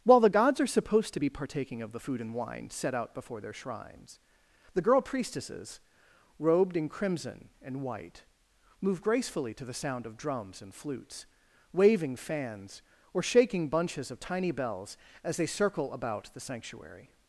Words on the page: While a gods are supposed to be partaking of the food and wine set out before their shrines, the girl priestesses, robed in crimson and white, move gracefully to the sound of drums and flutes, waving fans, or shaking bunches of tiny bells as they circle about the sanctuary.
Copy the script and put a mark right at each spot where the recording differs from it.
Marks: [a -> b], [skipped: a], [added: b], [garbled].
While [a -> the] gods are supposed to be partaking of the food and wine set out before their shrines, the girl priestesses, robed in crimson and white, move gracefully to the sound of drums and flutes, waving fans, or shaking bunches of tiny bells as they circle about the sanctuary.